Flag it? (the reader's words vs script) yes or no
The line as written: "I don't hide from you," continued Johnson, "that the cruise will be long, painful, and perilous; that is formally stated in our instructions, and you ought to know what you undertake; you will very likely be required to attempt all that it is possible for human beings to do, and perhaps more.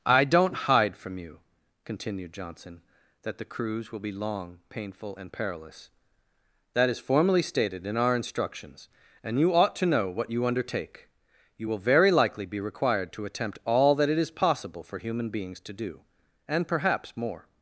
no